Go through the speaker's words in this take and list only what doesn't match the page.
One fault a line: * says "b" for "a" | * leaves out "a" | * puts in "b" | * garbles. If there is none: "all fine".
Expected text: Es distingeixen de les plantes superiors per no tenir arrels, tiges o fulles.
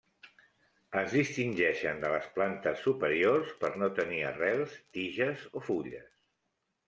all fine